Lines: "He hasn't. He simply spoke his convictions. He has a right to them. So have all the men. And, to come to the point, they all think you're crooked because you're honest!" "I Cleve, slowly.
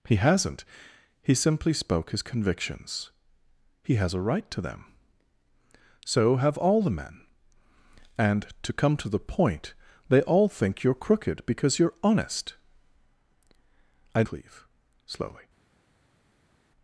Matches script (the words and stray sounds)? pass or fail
pass